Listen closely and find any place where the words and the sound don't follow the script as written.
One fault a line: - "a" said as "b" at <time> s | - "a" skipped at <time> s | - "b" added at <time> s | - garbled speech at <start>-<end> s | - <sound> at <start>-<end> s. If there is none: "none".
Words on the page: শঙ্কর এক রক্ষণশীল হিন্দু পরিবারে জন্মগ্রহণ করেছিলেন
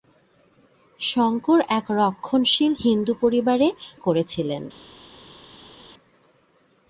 - "জন্মগ্রহণ" skipped at 3.7 s